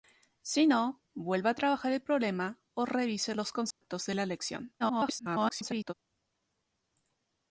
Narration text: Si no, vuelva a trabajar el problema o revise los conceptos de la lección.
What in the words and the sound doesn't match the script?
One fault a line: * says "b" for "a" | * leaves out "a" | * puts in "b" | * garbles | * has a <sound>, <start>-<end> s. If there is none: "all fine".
* has a dropout, 3.7-3.8 s
* garbles